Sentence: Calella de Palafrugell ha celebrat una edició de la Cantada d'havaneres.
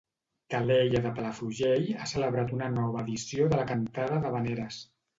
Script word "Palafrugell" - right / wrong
right